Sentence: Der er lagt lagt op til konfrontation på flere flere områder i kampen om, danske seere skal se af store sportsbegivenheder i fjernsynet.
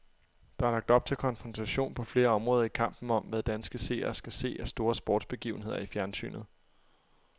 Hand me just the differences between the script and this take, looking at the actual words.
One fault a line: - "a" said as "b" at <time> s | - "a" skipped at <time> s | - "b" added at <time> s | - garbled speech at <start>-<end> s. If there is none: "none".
- "lagt" skipped at 0.9 s
- "flere" skipped at 2.3 s
- "hvad" added at 3.2 s